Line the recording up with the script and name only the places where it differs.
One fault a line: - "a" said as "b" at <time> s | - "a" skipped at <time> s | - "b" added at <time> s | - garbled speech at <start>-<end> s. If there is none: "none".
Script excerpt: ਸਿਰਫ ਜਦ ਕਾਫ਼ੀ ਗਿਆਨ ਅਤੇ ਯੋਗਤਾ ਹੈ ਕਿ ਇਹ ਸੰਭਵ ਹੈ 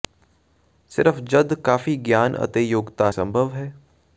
- "ਹੈ ਕਿ ਇਹ" skipped at 3.1 s